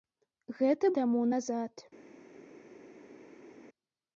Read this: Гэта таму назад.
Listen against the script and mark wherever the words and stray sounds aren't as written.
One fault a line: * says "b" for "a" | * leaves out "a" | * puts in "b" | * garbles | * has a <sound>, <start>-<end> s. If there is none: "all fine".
all fine